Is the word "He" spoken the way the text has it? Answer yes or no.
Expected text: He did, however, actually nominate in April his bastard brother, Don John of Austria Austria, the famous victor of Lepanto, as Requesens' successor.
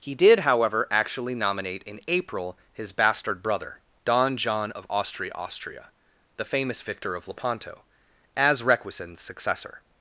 yes